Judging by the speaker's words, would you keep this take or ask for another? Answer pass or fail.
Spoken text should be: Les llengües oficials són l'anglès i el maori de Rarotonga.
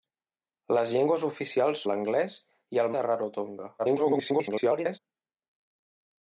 fail